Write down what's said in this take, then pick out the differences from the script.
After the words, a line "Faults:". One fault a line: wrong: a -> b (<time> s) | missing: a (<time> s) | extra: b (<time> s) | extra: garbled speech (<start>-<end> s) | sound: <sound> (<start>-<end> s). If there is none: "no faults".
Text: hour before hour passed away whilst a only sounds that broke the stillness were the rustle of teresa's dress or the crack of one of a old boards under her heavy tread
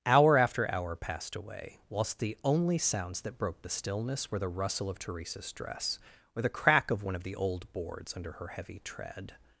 hour after hour passed away whilst the only sounds that broke the stillness were the rustle of teresa's dress or the crack of one of the old boards under her heavy tread
Faults:
wrong: before -> after (0.3 s)
wrong: a -> the (2.2 s)
wrong: a -> the (7.2 s)